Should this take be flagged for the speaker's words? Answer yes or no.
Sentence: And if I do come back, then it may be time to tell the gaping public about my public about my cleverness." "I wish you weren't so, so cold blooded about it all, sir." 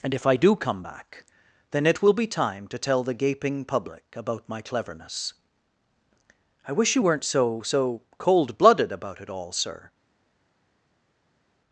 yes